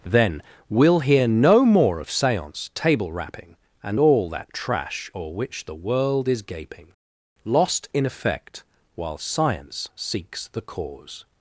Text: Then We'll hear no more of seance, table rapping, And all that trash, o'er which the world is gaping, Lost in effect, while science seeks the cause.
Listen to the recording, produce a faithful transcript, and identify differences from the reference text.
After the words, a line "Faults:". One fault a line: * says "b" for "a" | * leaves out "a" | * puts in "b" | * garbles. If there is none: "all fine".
Then We'll hear no more of seance, table rapping, And all that trash, o'er which the world is gaping, Lost in effect, while science seeks the cause.
Faults:
all fine